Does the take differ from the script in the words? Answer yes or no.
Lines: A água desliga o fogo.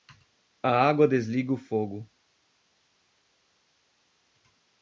no